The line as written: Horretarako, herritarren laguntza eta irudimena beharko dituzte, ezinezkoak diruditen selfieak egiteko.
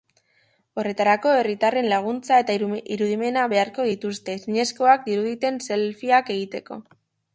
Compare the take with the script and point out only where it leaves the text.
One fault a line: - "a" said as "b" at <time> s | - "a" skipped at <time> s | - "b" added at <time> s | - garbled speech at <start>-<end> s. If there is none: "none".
none